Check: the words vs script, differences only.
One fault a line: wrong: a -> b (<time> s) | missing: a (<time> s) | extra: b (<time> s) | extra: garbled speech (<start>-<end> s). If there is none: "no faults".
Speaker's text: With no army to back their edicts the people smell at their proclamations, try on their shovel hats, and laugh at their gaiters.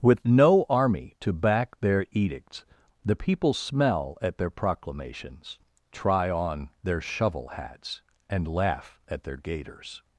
no faults